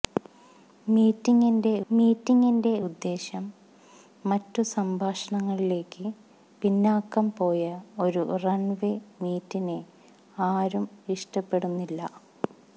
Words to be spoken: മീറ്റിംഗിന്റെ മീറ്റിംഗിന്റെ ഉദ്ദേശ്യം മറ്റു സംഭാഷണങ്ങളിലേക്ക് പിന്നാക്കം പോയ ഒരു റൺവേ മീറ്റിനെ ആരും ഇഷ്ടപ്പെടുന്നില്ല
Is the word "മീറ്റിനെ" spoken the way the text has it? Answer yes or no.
yes